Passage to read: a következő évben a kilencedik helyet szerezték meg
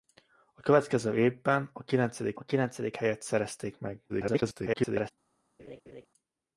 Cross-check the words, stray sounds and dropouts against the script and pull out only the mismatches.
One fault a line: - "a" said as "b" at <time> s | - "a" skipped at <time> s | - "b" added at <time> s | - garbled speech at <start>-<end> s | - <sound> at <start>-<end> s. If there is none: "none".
- "a kilencedik" added at 2.3 s
- garbled speech at 4.1-5.1 s
- laugh at 5.6-6.1 s